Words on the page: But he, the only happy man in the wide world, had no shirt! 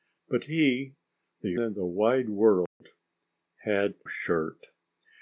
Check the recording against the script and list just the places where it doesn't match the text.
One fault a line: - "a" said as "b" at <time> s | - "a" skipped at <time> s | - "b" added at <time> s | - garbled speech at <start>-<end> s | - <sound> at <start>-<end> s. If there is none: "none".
- "only happy man" skipped at 1.6 s
- dropout at 2.7-2.8 s
- "no" skipped at 4.0 s